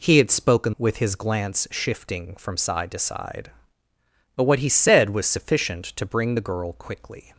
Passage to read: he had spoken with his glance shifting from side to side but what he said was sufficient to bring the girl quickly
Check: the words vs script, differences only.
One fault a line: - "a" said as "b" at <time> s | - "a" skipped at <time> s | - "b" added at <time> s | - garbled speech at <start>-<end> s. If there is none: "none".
none